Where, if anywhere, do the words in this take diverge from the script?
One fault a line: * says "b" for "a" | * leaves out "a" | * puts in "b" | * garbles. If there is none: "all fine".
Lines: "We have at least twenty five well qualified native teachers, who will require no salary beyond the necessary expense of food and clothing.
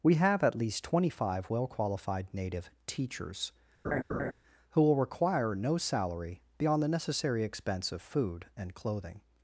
all fine